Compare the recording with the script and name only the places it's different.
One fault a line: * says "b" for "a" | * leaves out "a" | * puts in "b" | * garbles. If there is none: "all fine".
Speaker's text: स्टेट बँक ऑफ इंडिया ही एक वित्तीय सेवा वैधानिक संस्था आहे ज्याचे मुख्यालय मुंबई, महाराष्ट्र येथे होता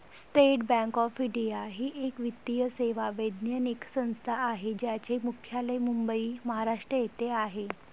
* says "आहे" for "होता"